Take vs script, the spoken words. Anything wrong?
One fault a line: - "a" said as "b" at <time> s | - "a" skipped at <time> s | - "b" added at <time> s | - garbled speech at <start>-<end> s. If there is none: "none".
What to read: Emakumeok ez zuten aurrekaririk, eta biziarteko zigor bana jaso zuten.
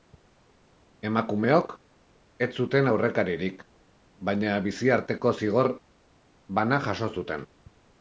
- "eta" said as "baina" at 4.3 s